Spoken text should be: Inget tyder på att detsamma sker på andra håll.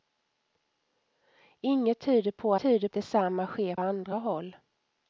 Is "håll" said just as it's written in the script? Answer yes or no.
yes